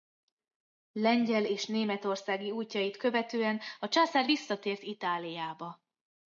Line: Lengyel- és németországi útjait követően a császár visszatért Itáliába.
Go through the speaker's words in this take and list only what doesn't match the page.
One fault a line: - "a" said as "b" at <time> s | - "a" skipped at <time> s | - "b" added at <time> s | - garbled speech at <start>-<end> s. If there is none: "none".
none